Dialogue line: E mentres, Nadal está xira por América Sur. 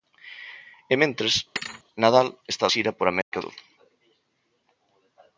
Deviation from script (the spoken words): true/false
false